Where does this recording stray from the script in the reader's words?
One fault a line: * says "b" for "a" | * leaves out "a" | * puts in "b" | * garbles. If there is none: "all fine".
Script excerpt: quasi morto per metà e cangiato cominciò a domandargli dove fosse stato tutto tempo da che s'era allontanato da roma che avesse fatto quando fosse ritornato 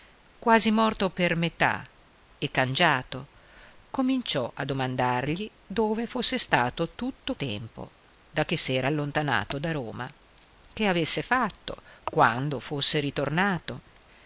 all fine